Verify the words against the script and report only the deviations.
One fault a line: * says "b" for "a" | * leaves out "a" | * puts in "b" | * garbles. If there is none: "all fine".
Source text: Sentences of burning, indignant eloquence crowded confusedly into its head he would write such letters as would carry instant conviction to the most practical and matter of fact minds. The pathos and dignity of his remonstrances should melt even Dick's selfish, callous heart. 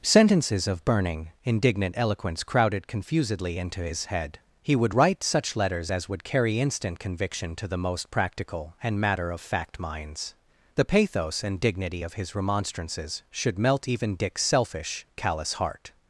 * says "his" for "its"